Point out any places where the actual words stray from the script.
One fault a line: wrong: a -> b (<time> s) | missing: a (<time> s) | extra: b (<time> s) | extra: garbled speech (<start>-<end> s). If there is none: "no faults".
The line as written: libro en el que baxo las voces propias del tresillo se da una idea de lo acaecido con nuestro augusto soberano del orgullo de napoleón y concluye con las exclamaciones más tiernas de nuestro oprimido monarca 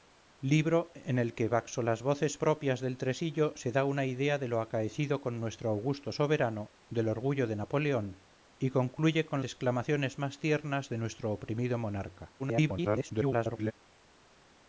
missing: las (9.4 s)
extra: garbled speech (12.4-13.7 s)